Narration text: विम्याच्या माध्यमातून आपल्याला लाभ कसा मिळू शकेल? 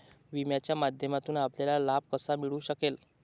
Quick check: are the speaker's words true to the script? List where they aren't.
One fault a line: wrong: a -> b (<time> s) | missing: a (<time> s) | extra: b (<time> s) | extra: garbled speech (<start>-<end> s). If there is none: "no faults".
no faults